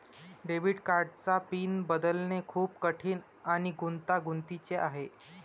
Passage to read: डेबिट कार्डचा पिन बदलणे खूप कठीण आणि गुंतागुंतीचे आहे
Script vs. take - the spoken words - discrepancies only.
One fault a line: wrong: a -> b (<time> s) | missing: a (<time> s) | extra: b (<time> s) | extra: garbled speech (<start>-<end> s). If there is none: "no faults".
no faults